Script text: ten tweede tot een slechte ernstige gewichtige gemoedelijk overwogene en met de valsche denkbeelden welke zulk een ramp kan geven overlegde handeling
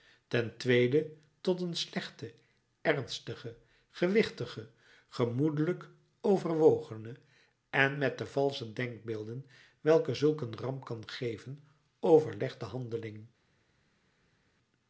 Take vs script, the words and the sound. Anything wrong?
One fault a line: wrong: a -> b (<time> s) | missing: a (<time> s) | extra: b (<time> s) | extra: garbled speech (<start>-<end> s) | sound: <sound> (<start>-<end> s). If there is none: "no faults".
no faults